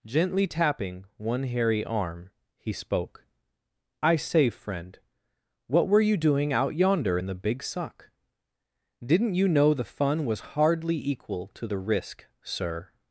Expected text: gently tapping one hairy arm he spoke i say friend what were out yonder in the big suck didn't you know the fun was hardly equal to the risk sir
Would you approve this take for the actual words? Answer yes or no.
no